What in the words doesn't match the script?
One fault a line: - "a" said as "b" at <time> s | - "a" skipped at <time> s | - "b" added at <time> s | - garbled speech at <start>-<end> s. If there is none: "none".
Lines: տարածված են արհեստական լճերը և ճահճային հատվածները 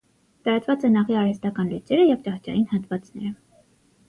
- "աղի" added at 1.0 s